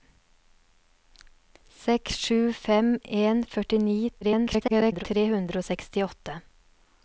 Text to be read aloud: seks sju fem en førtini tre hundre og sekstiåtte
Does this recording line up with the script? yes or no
no